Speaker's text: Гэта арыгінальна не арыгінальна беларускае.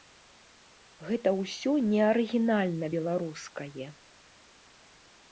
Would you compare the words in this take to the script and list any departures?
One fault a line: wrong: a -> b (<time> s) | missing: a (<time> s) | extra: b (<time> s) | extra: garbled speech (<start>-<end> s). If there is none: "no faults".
wrong: арыгінальна -> ўсё (1.4 s)